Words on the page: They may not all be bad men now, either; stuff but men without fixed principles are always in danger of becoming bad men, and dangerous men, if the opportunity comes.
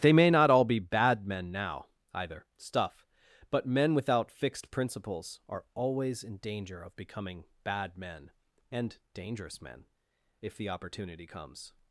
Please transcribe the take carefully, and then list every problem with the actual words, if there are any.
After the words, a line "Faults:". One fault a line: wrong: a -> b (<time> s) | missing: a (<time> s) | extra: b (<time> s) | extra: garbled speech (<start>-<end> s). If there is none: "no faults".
They may not all be bad men now, either; stuff but men without fixed principles are always in danger of becoming bad men, and dangerous men, if the opportunity comes.
Faults:
no faults